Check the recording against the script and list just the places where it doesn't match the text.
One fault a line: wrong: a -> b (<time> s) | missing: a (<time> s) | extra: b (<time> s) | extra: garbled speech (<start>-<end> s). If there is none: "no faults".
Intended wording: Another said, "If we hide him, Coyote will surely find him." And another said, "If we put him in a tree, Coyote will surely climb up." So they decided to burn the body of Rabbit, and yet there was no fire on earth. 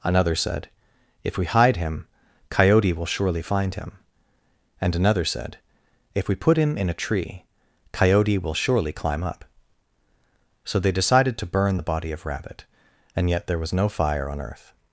no faults